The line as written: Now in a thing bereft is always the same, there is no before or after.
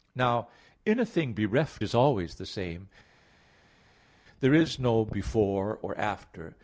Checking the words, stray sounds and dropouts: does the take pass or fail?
pass